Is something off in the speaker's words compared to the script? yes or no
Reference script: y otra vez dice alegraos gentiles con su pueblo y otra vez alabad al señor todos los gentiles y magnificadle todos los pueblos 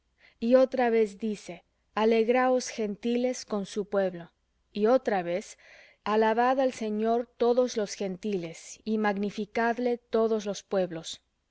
no